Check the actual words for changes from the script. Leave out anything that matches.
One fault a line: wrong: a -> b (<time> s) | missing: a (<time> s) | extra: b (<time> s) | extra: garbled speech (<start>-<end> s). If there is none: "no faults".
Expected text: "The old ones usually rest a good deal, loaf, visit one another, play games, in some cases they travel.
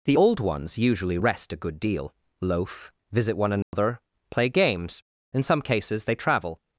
no faults